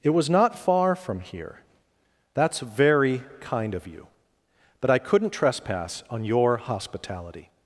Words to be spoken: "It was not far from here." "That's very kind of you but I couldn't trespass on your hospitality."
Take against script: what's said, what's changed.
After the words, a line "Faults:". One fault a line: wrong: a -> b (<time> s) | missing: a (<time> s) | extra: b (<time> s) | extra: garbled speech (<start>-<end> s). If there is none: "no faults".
"It was not far from here." "That's very kind of you but I couldn't trespass on your hospitality."
Faults:
no faults